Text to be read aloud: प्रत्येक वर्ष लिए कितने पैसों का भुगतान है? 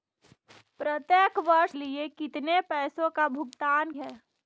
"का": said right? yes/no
yes